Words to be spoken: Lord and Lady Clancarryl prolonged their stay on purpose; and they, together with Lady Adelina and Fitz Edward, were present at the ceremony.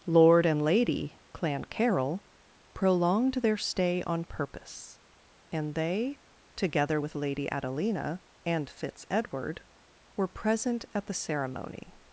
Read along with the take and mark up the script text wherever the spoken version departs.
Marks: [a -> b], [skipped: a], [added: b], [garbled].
Lord and Lady Clancarryl prolonged their stay on purpose; and they, together with Lady Adelina and Fitz Edward, were present at the ceremony.